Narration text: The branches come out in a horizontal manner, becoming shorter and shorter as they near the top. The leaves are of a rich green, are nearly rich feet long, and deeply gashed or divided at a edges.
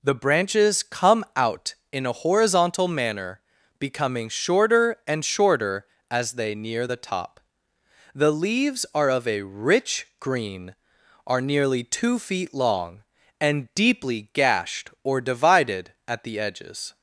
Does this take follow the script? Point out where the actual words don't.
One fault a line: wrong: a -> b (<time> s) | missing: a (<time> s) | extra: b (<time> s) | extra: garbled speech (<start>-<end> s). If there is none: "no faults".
wrong: rich -> two (11.8 s)
wrong: a -> the (16.2 s)